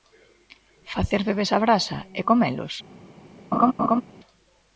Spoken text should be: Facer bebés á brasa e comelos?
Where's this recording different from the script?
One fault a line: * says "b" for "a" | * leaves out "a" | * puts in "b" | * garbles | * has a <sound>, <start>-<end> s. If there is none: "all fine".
* has a laugh, 3.5-4.0 s